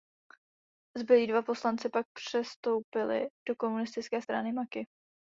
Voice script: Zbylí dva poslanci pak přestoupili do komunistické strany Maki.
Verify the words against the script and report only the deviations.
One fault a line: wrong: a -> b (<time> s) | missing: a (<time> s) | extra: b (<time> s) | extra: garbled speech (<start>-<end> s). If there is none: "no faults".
no faults